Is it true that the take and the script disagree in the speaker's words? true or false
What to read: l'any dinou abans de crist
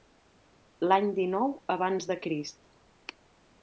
false